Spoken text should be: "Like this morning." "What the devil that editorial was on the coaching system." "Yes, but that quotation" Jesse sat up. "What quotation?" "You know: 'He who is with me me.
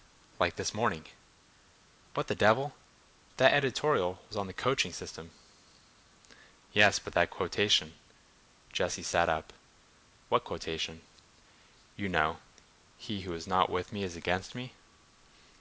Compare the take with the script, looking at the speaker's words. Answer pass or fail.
fail